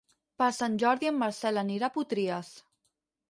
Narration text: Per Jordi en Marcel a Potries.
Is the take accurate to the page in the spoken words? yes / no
no